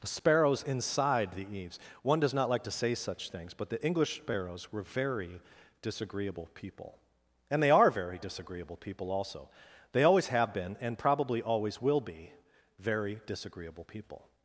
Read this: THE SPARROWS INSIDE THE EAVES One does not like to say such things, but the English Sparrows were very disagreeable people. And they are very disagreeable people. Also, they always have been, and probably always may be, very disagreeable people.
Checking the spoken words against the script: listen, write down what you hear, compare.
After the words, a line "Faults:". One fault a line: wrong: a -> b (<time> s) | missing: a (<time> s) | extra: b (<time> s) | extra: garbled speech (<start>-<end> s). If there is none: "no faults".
THE SPARROWS INSIDE THE EAVES One does not like to say such things, but the English Sparrows were very disagreeable people. And they are very disagreeable people. Also, they always have been, and probably always will be, very disagreeable people.
Faults:
wrong: may -> will (11.8 s)